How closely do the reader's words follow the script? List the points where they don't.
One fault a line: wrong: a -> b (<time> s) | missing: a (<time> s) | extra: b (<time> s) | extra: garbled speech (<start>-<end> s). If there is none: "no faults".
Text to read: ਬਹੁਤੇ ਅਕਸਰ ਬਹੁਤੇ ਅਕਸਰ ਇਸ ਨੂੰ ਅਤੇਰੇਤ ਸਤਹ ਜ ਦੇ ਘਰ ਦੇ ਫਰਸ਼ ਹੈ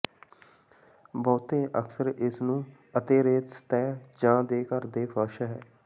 missing: ਬਹੁਤੇ ਅਕਸਰ (2.1 s)